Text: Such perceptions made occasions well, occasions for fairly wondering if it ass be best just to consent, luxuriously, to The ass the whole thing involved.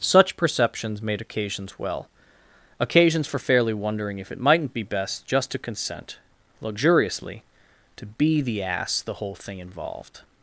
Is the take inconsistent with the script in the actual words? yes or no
yes